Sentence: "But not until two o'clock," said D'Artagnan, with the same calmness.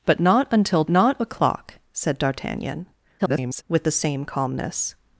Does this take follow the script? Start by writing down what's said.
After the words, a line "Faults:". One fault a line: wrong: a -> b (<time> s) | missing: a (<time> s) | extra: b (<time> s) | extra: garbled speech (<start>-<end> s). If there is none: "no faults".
"But not until not o'clock," said D'Artagnan, [garbled] with the same calmness.
Faults:
wrong: two -> not (0.9 s)
extra: garbled speech (3.2-3.6 s)